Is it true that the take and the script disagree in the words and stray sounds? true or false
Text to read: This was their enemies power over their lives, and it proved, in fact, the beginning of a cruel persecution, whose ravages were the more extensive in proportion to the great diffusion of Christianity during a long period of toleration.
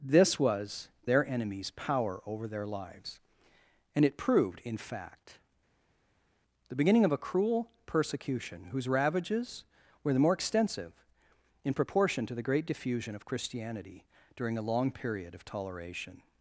false